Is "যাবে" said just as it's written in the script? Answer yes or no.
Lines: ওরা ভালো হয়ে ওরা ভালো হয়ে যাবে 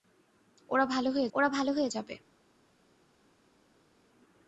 yes